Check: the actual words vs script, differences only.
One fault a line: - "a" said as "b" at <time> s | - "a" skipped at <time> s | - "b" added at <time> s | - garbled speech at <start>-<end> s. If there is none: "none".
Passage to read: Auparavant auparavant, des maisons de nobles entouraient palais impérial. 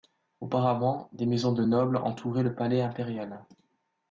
- "auparavant" skipped at 1.1 s
- "le" added at 2.4 s